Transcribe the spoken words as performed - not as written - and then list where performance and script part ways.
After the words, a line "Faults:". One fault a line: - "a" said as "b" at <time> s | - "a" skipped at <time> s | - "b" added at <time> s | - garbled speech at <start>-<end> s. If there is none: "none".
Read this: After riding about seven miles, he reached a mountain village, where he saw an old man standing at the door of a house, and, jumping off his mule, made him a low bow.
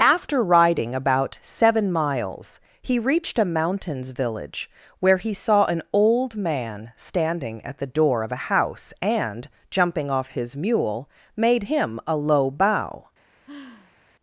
After riding about seven miles, he reached a mountains village, where he saw an old man standing at the door of a house, and, jumping off his mule, made him a low bow.
Faults:
- "mountain" said as "mountains" at 3.5 s